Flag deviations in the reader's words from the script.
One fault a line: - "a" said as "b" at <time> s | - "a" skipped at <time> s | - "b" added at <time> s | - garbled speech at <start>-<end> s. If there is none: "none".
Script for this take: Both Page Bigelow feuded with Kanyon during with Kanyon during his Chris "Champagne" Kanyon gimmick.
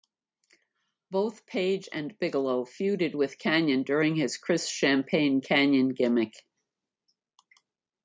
- "and" added at 1.9 s
- "with Kanyon during" skipped at 4.2 s